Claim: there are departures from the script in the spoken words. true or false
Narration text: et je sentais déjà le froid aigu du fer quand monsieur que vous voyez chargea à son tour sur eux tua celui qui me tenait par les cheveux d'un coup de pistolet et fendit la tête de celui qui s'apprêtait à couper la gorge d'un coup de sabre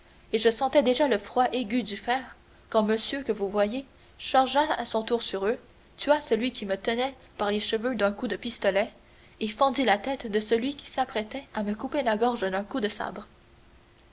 true